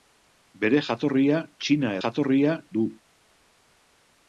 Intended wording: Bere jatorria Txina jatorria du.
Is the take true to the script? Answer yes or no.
yes